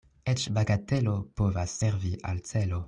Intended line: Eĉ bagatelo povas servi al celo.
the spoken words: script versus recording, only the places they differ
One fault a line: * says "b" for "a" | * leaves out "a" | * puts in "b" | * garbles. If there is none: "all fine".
all fine